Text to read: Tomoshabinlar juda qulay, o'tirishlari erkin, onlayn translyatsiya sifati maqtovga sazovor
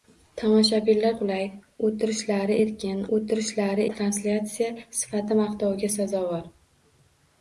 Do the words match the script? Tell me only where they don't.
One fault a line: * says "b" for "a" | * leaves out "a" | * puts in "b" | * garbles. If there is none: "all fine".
* leaves out "juda"
* says "o'tirishlari" for "onlayn"